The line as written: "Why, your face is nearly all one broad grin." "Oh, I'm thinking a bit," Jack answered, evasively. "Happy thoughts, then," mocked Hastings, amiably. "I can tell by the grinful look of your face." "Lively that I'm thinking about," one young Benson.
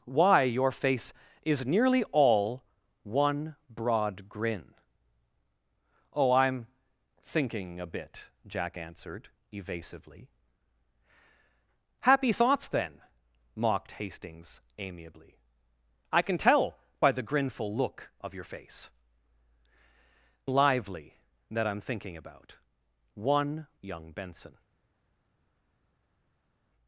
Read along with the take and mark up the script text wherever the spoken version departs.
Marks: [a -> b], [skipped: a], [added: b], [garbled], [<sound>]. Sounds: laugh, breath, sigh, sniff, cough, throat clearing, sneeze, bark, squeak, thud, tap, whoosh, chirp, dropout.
"Why, your face is nearly all one broad grin." "Oh, I'm thinking a bit," Jack answered, evasively. "Happy thoughts, then," mocked Hastings, amiably. "I can tell by the grinful look of your face." "Lively that I'm thinking about," one young Benson.